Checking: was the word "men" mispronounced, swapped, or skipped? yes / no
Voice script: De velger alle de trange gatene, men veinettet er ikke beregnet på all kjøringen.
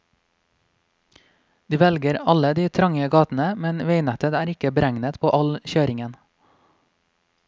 no